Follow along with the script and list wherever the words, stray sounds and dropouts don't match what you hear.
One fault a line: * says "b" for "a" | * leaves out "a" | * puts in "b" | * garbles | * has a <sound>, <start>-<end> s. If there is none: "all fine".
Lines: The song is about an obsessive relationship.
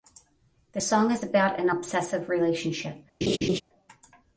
* has a laugh, 3.2-3.6 s